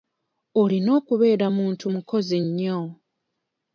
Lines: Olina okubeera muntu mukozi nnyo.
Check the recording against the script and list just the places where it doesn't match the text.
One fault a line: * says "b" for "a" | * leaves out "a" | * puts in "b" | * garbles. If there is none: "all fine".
all fine